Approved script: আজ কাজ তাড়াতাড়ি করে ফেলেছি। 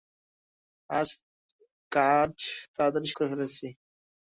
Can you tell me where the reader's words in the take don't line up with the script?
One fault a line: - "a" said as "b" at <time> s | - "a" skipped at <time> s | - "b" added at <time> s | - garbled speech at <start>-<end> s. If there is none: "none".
none